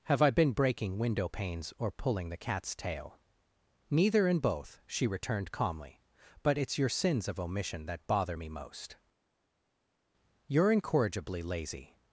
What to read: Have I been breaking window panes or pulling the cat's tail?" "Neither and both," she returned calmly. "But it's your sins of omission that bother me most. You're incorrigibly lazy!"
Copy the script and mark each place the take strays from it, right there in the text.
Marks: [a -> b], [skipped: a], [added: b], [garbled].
Have I been breaking window panes or pulling the cat's tail?" "Neither and both," she returned calmly. "But it's your sins of omission that bother me most. You're incorrigibly lazy!"